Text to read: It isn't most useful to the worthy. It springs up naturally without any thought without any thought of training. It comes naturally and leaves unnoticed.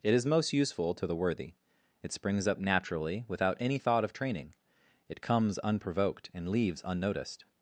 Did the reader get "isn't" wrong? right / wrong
wrong